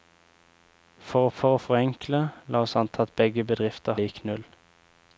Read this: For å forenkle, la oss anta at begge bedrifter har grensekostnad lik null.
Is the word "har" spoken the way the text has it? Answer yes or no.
no